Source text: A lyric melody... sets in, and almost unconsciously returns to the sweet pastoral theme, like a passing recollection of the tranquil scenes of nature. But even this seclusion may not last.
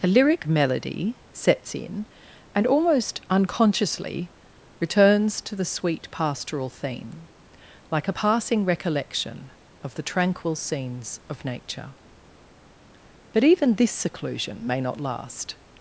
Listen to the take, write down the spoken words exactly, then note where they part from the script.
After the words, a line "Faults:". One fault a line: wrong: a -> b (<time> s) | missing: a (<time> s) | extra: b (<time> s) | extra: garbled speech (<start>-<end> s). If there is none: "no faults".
A lyric melody... sets in, and almost unconsciously returns to the sweet pastoral theme, like a passing recollection of the tranquil scenes of nature. But even this seclusion may not last.
Faults:
no faults